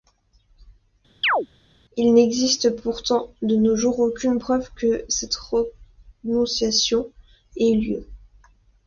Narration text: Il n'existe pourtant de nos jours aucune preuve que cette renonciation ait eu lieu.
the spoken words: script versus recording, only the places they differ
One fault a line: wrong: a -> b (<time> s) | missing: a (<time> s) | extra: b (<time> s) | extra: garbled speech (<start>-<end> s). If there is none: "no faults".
no faults